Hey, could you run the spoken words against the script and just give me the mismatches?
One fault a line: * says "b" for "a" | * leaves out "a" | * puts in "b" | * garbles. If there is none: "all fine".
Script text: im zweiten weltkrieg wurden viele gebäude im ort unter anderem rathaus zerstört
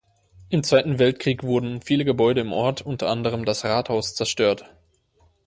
* puts in "das"